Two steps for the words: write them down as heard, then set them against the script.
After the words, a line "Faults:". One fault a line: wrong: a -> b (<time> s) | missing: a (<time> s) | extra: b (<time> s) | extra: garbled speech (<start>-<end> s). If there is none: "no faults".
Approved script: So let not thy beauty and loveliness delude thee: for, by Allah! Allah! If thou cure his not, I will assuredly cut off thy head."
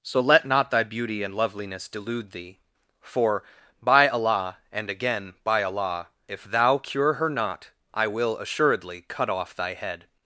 So let not thy beauty and loveliness delude thee: for, by Allah! and again, by Allah! If thou cure her not, I will assuredly cut off thy head."
Faults:
extra: and again by (4.7 s)
wrong: his -> her (7.1 s)